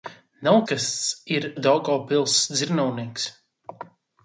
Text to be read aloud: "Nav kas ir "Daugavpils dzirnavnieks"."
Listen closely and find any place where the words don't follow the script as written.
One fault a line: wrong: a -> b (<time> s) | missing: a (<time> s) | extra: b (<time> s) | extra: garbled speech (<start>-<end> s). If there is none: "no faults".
no faults